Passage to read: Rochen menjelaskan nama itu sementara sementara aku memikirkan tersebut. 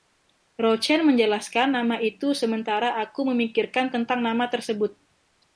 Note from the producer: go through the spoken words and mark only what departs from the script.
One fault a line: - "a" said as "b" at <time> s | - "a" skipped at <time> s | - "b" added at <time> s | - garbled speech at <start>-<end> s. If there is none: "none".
- "sementara" skipped at 3.0 s
- "tentang nama" added at 3.9 s